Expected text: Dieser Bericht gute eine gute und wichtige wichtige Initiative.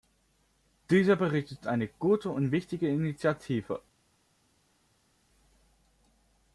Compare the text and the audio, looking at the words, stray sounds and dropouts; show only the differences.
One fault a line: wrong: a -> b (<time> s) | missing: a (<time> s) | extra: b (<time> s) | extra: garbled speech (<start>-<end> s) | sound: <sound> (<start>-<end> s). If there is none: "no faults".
wrong: gute -> ist (1.5 s)
missing: wichtige (2.9 s)